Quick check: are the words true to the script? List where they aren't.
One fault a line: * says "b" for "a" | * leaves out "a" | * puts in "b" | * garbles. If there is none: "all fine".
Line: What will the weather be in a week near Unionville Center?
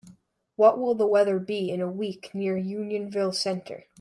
all fine